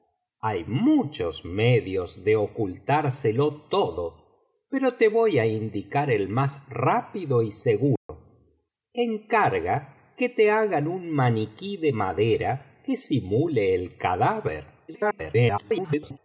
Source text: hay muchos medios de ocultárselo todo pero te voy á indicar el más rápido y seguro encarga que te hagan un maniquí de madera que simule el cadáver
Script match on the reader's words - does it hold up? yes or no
no